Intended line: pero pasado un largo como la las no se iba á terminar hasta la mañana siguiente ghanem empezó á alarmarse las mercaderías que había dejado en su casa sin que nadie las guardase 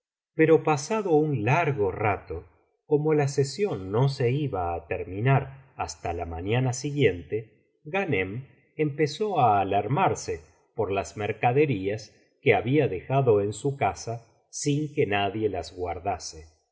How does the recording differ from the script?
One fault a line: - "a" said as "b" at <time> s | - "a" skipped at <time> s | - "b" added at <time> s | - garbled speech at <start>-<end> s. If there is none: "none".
- "rato" added at 1.9 s
- "las" said as "sesión" at 3.3 s
- "por" added at 10.8 s